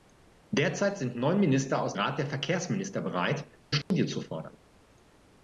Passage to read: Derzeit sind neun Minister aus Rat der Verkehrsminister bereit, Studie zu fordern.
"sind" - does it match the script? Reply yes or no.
yes